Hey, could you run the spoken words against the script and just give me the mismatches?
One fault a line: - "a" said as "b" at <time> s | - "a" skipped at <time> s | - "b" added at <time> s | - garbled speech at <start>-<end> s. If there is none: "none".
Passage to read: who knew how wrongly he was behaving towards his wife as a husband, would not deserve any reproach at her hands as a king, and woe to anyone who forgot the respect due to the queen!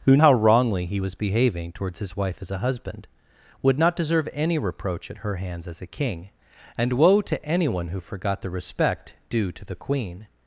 - "knew" skipped at 0.2 s